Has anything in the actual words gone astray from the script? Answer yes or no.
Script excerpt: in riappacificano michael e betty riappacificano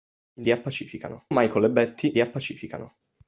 no